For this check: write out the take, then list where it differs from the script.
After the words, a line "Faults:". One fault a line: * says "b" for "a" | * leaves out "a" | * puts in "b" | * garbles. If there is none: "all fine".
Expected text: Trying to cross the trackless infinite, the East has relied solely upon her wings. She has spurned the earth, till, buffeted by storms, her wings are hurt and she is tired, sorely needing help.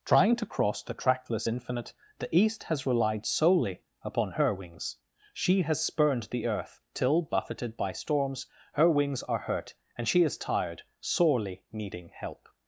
Trying to cross the trackless infinite, the East has relied solely upon her wings. She has spurned the earth, till, buffeted by storms, her wings are hurt and she is tired, sorely needing help.
Faults:
all fine